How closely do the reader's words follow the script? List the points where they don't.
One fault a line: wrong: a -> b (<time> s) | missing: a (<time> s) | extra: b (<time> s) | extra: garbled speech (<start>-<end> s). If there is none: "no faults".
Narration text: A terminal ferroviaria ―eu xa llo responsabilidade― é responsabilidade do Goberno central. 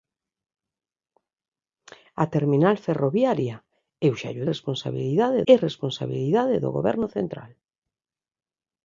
no faults